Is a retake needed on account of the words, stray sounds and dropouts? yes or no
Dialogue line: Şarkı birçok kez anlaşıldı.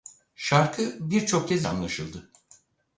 no